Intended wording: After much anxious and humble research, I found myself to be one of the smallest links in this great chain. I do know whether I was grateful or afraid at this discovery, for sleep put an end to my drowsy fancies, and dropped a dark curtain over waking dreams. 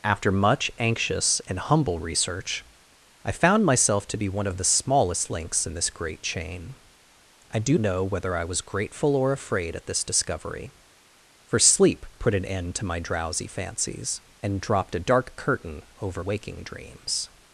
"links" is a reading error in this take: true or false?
false